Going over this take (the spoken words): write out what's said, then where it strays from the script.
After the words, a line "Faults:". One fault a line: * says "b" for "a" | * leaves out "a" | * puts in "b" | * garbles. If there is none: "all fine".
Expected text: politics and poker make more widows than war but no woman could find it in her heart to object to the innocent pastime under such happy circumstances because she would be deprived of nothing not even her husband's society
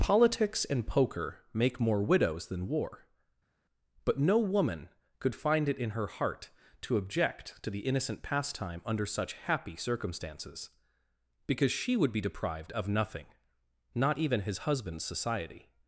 politics and poker make more widows than war but no woman could find it in her heart to object to the innocent pastime under such happy circumstances because she would be deprived of nothing not even his husband's society
Faults:
* says "his" for "her"